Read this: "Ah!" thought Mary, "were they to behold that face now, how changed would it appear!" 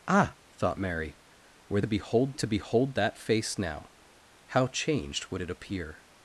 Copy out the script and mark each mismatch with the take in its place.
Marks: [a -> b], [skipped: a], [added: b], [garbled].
"Ah!" thought Mary, "were [they -> behold] to behold that face now, how changed would it appear!"